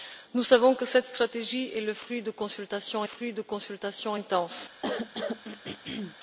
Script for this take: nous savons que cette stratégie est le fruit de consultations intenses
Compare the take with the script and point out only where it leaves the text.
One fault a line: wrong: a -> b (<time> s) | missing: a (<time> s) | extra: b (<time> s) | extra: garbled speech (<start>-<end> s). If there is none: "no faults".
extra: fruit de consultations (3.0 s)